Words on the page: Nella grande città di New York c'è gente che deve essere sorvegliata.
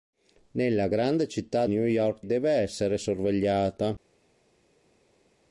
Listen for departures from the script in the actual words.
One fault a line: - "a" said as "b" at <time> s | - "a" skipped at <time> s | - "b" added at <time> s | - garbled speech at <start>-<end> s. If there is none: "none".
- "di" skipped at 1.7 s
- "c'è gente che" skipped at 2.2 s